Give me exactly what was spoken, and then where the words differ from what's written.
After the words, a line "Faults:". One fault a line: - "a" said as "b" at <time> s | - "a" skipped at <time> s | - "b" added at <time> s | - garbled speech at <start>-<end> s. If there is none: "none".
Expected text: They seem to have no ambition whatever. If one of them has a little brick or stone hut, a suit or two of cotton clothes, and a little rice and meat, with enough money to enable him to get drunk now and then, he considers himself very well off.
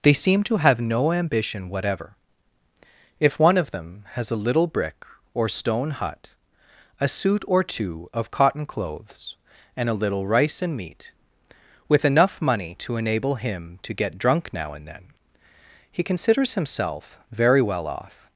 They seem to have no ambition whatever. If one of them has a little brick or stone hut, a suit or two of cotton clothes, and a little rice and meat, with enough money to enable him to get drunk now and then, he considers himself very well off.
Faults:
none